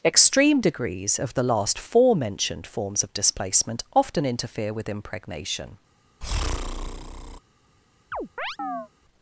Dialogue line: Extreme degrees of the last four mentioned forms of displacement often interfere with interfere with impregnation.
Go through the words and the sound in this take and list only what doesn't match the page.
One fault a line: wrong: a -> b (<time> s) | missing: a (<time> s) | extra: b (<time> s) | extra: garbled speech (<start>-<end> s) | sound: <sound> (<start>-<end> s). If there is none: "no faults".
missing: interfere with (4.9 s)
sound: breath (6.2-7.4 s)
sound: chirp (8.1-8.9 s)